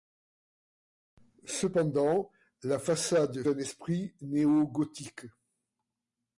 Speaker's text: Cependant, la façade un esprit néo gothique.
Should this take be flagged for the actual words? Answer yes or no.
no